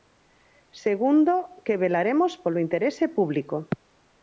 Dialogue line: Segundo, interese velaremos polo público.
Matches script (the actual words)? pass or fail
fail